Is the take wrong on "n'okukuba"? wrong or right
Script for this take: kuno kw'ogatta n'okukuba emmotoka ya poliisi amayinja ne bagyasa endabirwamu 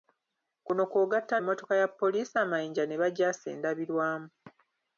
wrong